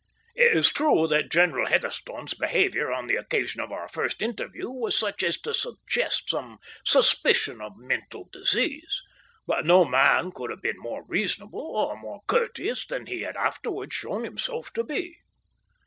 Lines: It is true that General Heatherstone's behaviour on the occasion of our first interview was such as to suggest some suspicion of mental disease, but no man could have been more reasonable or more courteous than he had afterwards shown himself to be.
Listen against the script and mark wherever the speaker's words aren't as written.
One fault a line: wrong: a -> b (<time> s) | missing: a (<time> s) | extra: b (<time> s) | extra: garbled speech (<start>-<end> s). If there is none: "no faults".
no faults